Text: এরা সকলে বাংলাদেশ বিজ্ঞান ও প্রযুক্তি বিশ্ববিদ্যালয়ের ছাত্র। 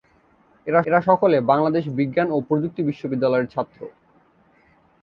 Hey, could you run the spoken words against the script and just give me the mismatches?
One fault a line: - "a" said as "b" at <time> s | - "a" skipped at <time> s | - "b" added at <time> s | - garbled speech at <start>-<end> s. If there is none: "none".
- "এরা" added at 0.9 s